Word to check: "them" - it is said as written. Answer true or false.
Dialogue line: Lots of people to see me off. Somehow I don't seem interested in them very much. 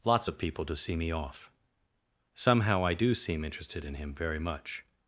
false